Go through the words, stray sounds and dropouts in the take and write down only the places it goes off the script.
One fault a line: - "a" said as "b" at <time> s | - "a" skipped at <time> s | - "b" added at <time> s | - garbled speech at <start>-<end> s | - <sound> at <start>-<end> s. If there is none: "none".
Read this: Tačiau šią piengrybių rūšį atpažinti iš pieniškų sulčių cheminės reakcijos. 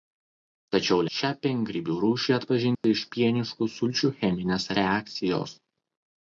- dropout at 2.7-2.8 s